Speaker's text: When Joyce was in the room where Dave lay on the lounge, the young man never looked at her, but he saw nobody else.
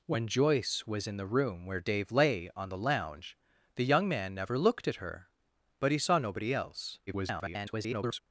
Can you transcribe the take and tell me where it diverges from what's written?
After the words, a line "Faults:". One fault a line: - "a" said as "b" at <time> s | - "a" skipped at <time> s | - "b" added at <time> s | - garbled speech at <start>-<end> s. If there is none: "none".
When Joyce was in the room where Dave lay on the lounge, the young man never looked at her, but he saw nobody else. [garbled]
Faults:
- garbled speech at 7.1-8.2 s